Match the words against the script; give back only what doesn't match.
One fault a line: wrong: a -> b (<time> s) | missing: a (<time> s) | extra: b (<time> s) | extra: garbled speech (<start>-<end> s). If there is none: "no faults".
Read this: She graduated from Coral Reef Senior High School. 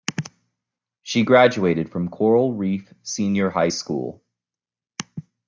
no faults